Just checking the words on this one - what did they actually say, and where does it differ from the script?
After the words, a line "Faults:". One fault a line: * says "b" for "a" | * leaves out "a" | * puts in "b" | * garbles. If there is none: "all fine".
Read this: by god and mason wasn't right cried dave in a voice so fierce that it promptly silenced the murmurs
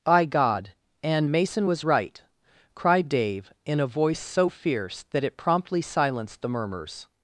by god and mason was right cried dave in a voice so fierce that it promptly silenced the murmurs
Faults:
* says "was" for "wasn't"